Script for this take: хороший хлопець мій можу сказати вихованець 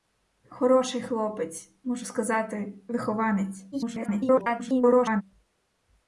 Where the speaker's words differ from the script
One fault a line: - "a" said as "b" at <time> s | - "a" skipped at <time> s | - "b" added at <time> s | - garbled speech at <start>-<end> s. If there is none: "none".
- "мій" skipped at 1.7 s
- garbled speech at 3.7-5.2 s